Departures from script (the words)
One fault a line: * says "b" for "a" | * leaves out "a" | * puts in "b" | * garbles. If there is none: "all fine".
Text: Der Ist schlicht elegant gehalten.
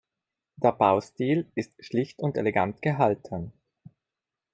* puts in "Baustil"
* puts in "und"